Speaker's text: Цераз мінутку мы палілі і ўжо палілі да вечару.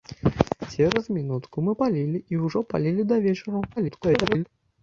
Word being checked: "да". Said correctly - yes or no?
yes